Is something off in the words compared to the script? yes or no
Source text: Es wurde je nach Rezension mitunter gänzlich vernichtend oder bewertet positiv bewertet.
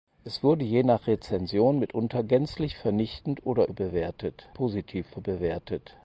no